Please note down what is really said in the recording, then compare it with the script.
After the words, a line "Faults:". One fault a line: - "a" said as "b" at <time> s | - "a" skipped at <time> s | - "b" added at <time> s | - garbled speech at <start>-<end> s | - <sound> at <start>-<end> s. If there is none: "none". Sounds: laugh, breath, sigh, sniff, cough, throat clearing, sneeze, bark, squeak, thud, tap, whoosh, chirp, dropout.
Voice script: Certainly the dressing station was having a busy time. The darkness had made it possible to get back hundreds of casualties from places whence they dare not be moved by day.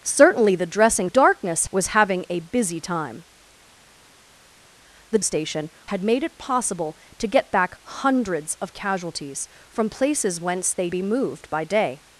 Certainly the dressing darkness was having a busy time. The station had made it possible to get back hundreds of casualties from places whence they be moved by day.
Faults:
- "station" said as "darkness" at 1.0 s
- "darkness" said as "station" at 5.2 s
- "dare not" skipped at 10.9 s